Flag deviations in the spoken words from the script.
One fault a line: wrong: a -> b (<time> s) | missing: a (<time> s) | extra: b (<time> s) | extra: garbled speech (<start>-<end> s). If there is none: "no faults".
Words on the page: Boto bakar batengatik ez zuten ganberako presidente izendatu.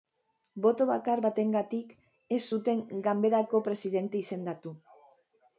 no faults